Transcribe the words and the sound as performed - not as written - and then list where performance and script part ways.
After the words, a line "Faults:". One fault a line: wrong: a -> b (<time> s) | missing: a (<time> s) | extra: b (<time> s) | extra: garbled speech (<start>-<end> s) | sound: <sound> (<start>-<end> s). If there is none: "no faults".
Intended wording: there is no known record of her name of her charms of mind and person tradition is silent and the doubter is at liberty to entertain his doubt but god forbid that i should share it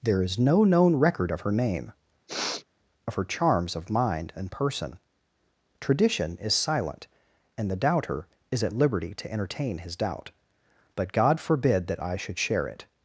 there is no known record of her name of her charms of mind and person tradition is silent and the doubter is at liberty to entertain his doubt but god forbid that i should share it
Faults:
sound: sniff (2.3-2.7 s)